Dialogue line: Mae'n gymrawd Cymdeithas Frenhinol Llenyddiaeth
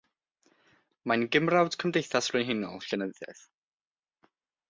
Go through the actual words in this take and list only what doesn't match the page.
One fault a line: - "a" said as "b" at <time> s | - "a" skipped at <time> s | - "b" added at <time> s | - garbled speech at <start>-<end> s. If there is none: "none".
none